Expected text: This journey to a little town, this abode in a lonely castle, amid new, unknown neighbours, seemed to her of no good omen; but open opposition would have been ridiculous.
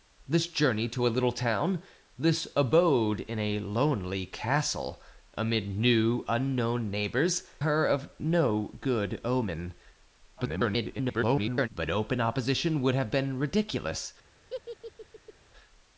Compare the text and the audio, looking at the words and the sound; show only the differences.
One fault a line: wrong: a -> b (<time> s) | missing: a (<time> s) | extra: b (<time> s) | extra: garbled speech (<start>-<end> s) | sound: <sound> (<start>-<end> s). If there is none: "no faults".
missing: seemed to (7.4 s)
extra: garbled speech (10.4-11.7 s)
sound: laugh (14.5-15.3 s)